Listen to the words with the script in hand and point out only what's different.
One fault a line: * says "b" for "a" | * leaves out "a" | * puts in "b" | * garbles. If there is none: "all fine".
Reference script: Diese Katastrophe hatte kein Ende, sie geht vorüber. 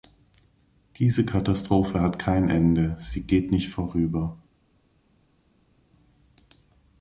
* says "hat" for "hatte"
* puts in "nicht"